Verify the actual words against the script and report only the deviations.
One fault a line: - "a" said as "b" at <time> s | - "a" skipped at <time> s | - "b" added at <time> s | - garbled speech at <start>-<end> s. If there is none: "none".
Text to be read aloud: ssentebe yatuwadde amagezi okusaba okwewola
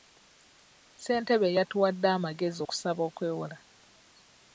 none